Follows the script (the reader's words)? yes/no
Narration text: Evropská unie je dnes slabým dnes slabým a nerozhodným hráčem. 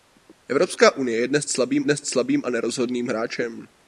yes